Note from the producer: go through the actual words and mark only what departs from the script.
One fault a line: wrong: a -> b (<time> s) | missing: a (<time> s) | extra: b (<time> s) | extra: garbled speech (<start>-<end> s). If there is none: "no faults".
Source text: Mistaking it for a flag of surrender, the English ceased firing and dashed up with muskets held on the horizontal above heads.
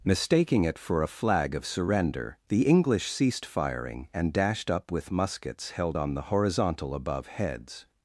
no faults